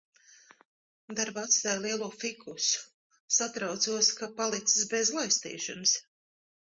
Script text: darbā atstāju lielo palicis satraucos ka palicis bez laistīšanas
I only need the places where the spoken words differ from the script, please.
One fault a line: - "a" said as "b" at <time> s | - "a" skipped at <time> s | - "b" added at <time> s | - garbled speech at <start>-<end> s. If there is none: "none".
- "palicis" said as "fikusu" at 2.2 s